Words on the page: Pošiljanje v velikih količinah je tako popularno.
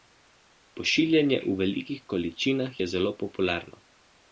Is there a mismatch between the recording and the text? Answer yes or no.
yes